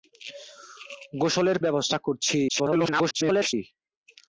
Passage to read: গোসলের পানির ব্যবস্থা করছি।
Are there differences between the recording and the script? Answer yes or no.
yes